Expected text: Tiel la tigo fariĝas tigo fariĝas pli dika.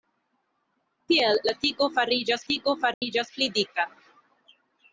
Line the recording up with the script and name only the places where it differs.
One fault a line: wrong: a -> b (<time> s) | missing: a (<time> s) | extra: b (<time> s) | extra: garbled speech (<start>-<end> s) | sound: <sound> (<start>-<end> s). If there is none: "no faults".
sound: dropout (2.9-3.0 s)